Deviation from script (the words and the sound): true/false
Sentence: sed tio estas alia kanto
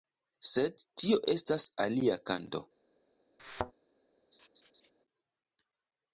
true